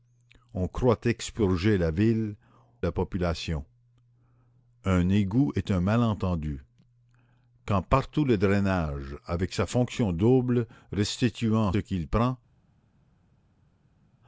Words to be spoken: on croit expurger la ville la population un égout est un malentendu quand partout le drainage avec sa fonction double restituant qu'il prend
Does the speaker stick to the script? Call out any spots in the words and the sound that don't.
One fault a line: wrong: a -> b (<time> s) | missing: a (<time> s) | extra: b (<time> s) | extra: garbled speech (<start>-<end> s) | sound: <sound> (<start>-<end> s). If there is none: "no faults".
no faults